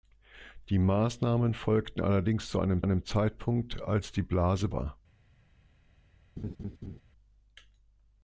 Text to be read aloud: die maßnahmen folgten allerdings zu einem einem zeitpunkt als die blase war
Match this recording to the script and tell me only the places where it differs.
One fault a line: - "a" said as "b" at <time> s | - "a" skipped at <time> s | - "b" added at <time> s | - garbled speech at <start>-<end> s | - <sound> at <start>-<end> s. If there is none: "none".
- laugh at 6.4-7.0 s